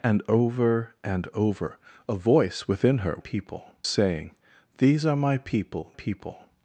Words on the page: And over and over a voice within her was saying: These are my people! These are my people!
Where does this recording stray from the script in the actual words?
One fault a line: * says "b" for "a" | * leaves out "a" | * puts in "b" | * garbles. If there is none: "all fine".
* says "people" for "was"
* leaves out "These are my"